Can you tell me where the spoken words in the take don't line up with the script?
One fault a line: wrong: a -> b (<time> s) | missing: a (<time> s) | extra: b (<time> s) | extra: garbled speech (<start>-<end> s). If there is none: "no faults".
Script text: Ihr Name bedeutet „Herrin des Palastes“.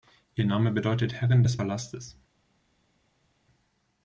no faults